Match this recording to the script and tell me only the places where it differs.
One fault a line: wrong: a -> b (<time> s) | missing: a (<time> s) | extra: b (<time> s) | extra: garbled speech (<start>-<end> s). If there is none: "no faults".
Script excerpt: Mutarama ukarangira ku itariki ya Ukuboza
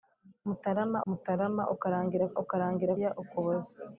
extra: mutarama (1.1 s)
wrong: itariki -> ukarangira (2.4 s)